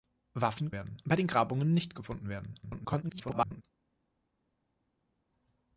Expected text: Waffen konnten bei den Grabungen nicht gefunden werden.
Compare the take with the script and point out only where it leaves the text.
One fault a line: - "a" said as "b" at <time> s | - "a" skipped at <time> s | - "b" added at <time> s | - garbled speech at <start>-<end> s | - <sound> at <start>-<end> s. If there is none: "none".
- "konnten" said as "werden" at 0.7 s
- garbled speech at 2.6-3.6 s